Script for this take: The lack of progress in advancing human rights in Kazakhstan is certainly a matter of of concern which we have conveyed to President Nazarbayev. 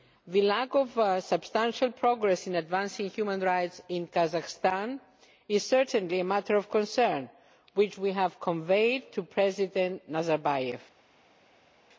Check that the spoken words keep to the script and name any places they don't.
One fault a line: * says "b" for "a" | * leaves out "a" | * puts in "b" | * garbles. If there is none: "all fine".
* puts in "substantial"
* leaves out "of"